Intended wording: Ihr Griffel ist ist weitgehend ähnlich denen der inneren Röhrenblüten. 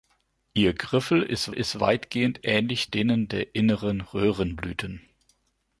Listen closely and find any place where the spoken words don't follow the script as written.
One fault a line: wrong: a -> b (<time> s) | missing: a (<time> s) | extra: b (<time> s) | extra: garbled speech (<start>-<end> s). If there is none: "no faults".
no faults